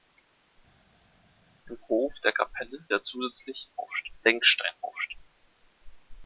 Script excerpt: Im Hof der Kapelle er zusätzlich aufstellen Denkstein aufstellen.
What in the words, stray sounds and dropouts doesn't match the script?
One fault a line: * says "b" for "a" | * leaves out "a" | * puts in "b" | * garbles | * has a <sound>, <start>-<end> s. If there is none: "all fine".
all fine